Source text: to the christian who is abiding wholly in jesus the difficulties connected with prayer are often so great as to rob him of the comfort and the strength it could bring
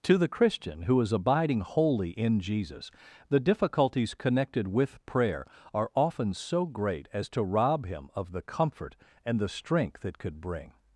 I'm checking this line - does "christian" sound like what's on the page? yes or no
yes